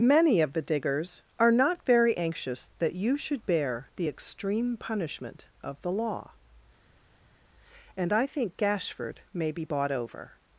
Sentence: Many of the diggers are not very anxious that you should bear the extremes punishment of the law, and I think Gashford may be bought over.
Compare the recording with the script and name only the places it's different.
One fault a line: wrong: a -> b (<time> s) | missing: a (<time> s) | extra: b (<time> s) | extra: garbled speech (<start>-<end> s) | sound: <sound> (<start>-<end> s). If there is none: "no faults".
wrong: extremes -> extreme (4.1 s)